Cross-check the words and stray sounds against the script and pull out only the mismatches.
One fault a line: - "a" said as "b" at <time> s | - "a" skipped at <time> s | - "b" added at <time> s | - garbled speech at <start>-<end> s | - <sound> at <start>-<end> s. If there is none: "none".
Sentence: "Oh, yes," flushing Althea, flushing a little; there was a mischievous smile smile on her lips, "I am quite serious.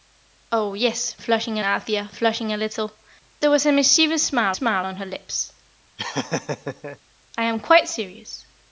- laugh at 6.0-7.0 s